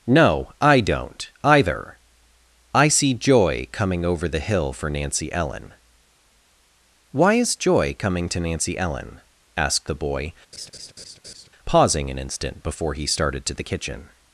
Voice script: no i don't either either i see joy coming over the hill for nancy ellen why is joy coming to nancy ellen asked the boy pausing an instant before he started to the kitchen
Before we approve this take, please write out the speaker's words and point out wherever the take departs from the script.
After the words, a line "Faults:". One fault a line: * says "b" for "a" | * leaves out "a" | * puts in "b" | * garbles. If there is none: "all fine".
no i don't either i see joy coming over the hill for nancy ellen why is joy coming to nancy ellen asked the boy pausing an instant before he started to the kitchen
Faults:
* leaves out "either"